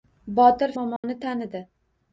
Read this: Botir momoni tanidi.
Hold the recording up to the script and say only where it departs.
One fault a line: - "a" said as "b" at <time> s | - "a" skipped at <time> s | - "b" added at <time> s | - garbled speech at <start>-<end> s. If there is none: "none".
none